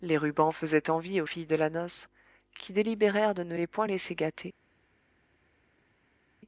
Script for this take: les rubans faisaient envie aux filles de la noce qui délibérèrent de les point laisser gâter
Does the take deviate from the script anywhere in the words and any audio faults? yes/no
yes